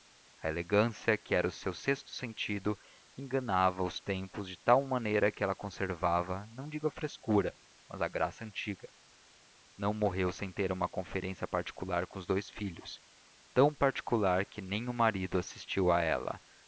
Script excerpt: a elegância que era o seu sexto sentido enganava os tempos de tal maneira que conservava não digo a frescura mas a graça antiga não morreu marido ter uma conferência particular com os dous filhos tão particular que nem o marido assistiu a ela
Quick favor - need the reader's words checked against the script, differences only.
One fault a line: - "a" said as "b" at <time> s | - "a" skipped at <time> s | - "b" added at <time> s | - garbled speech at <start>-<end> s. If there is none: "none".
- "ela" added at 5.4 s
- "marido" said as "sem" at 10.3 s